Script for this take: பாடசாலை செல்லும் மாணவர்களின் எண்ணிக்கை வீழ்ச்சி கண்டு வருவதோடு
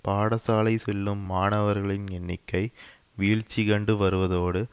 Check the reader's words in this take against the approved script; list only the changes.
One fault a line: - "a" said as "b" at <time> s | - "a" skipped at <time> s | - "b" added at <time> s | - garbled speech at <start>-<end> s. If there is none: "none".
none